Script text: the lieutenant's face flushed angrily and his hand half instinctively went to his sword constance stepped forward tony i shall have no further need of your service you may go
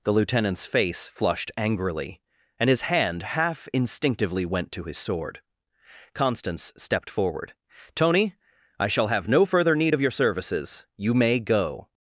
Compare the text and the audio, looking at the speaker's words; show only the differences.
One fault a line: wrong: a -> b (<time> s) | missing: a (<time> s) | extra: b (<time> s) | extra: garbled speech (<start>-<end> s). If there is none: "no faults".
wrong: service -> services (10.1 s)